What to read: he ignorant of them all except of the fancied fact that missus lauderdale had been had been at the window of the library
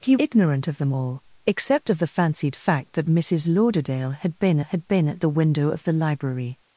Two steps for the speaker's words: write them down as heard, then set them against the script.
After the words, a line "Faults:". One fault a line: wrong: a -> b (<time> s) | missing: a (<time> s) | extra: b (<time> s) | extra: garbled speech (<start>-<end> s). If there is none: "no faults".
he ignorant of them all except of the fancied fact that missus lauderdale had been had been at the window of the library
Faults:
no faults